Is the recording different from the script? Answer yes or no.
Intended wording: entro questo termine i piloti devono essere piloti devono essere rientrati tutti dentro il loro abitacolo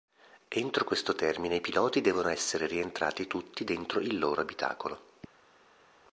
yes